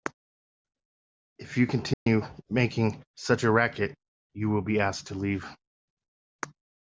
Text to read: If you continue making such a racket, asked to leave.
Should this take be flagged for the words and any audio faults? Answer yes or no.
yes